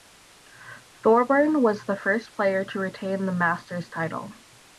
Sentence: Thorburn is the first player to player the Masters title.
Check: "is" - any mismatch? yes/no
yes